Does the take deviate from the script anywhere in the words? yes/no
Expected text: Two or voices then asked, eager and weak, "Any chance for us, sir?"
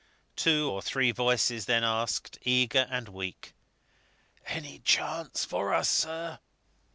yes